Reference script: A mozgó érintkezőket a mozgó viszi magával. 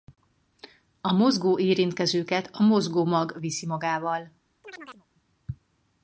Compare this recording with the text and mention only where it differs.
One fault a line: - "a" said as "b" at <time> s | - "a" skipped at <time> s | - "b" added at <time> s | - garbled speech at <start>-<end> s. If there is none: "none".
- "mag" added at 3.0 s